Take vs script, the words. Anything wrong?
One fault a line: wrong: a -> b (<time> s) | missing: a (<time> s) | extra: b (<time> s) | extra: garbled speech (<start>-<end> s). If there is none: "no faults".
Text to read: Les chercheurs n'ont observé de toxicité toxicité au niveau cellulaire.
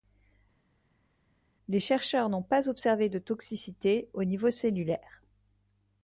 extra: pas (2.4 s)
missing: toxicité (4.1 s)